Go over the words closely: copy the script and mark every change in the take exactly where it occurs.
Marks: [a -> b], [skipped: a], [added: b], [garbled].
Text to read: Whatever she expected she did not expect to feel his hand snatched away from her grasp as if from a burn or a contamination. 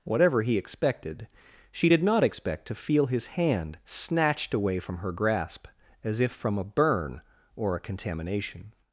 Whatever [she -> he] expected she did not expect to feel his hand snatched away from her grasp as if from a burn or a contamination.